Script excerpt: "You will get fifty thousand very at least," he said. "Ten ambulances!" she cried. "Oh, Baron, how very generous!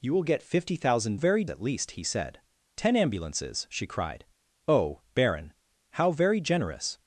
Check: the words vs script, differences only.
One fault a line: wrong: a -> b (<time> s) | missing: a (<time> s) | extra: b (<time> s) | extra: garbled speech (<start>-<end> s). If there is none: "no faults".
no faults